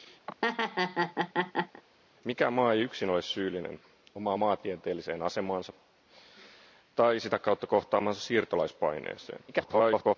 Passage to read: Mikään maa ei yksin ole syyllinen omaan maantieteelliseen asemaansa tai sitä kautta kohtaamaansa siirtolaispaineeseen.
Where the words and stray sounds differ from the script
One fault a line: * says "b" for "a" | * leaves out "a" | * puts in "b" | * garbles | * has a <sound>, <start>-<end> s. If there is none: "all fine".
* has a laugh, 0.3-1.8 s
* garbles